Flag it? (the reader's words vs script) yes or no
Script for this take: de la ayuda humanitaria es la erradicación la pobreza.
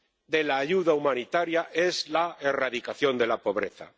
yes